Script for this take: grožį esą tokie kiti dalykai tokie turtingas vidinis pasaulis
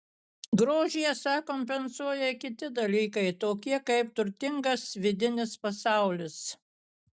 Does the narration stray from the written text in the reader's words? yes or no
yes